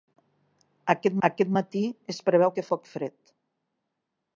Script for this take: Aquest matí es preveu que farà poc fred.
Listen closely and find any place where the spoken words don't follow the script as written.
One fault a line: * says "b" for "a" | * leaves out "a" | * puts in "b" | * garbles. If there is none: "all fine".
* puts in "aquest"
* leaves out "farà"